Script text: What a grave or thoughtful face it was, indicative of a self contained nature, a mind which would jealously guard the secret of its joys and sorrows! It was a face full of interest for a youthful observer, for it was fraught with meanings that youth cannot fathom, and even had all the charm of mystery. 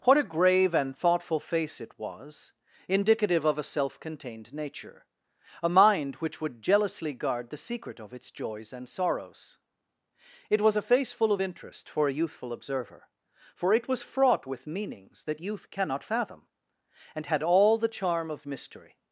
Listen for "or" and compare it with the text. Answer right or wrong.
wrong